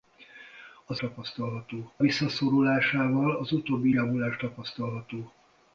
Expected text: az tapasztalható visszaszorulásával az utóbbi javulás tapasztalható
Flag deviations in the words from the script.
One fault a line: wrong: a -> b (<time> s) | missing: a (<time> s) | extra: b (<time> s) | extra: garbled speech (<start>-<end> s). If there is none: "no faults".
no faults